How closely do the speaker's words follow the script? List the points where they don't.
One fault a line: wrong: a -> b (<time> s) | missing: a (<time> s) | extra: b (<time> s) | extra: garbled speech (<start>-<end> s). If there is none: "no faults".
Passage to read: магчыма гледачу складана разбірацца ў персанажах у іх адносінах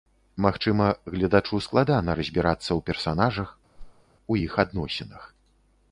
no faults